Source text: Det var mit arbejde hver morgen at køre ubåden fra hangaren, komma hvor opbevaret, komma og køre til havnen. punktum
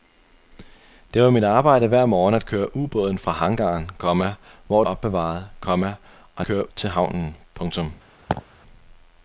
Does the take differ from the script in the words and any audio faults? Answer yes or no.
yes